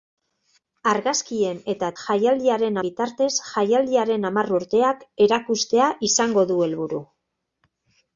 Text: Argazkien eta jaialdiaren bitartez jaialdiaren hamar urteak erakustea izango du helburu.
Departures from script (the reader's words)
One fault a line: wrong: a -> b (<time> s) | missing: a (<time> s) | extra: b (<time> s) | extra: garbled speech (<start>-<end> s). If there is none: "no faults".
no faults